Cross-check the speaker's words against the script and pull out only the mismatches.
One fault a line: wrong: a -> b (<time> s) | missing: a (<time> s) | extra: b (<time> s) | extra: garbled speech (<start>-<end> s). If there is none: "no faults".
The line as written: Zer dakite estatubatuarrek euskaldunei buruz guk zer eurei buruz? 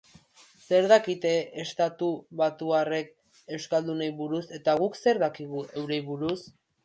extra: eta (4.6 s)
extra: dakigu (5.3 s)